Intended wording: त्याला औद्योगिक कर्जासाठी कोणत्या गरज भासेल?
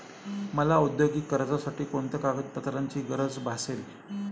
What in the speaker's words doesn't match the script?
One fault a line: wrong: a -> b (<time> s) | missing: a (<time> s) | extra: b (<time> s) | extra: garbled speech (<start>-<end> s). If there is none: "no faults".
wrong: त्याला -> मला (0.5 s)
extra: कागदपत्रांची (2.2 s)